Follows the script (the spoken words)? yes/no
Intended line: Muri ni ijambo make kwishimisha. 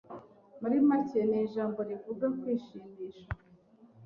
no